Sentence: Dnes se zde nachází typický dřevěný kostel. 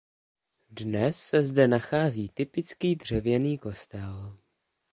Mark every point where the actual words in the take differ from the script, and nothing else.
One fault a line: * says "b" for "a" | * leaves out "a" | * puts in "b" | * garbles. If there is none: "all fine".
all fine